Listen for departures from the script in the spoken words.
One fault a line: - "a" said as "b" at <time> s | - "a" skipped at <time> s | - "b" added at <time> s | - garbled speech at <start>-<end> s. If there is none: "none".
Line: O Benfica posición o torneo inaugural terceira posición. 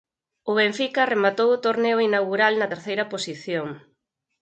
- "posición" said as "rematou" at 1.1 s
- "na" added at 2.6 s